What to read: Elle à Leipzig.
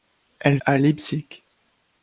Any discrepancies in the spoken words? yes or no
no